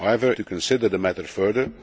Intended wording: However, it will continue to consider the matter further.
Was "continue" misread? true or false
true